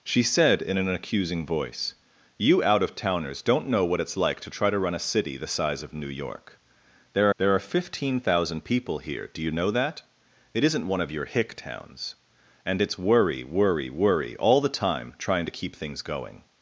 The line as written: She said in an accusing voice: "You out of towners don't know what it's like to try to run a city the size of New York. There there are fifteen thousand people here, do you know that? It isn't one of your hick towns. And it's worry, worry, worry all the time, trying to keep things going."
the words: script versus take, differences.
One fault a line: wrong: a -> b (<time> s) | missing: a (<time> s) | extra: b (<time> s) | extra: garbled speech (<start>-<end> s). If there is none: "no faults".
no faults